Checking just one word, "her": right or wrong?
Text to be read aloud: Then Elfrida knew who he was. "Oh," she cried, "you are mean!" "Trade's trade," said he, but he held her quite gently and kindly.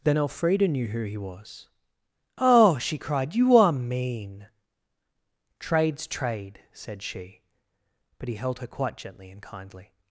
right